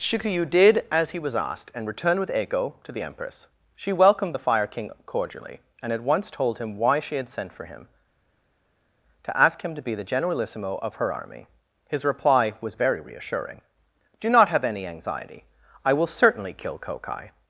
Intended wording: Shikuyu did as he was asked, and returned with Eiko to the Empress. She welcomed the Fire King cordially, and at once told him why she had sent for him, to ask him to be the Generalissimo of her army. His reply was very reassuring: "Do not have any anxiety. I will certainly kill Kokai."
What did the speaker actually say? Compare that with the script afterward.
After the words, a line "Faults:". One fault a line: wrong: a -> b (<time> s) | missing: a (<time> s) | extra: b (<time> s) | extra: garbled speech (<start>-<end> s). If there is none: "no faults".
Shikuyu did as he was asked, and returned with Eiko to the Empress. She welcomed the Fire King cordially, and at once told him why she had sent for him, to ask him to be the Generalissimo of her army. His reply was very reassuring: "Do not have any anxiety. I will certainly kill Kokai."
Faults:
no faults